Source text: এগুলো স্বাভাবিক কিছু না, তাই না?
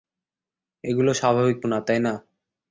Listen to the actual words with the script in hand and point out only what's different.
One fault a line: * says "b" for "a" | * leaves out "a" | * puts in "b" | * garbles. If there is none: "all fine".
* leaves out "কিছু"